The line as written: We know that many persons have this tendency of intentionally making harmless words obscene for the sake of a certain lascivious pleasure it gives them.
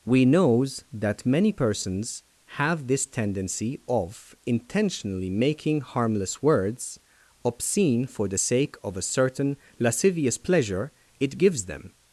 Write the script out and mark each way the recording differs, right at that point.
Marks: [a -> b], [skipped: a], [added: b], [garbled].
We [know -> knows] that many persons have this tendency of intentionally making harmless words obscene for the sake of a certain lascivious pleasure it gives them.